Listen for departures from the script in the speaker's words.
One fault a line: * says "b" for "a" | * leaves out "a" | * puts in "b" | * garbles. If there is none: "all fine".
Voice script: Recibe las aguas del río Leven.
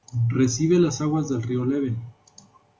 all fine